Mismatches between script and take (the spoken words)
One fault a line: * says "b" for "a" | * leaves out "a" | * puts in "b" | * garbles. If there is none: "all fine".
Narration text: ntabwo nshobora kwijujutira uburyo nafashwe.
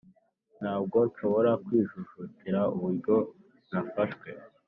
all fine